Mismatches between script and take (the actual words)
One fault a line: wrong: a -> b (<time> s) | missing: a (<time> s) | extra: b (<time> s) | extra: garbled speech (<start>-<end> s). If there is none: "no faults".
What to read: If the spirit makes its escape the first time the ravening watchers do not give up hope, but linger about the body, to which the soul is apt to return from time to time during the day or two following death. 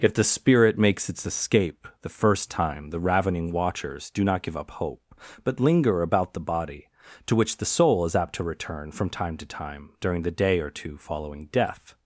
no faults